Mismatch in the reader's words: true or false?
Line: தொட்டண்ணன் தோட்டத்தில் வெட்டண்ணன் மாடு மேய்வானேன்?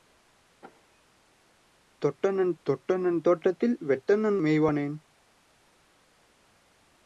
true